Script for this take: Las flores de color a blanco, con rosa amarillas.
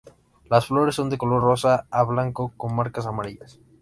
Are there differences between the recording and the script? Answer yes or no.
yes